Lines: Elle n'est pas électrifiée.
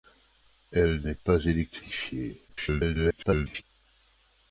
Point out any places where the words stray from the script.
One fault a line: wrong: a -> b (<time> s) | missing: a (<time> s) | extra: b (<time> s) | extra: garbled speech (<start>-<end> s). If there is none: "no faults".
extra: garbled speech (2.5-3.6 s)